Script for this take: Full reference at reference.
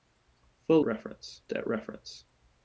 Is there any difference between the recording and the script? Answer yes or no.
no